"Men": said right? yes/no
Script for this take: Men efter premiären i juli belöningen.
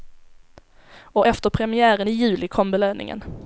no